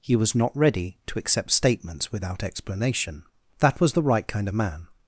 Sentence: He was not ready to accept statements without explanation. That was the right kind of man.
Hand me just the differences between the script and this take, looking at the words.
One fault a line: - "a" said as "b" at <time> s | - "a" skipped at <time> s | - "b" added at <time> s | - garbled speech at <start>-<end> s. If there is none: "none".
none